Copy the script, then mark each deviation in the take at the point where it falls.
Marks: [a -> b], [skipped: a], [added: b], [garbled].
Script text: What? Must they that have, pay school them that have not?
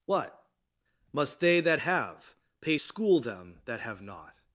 What? Must they that have, pay school them that have not?